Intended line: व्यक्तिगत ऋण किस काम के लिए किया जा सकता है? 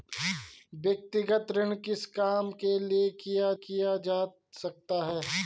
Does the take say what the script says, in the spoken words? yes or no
no